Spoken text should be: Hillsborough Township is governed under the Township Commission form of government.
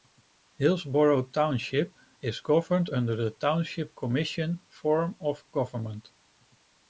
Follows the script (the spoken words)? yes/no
yes